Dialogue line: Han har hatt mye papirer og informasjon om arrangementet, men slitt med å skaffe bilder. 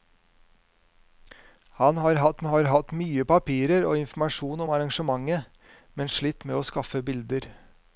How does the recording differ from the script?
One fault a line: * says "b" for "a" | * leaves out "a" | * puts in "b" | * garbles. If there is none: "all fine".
* puts in "har hatt"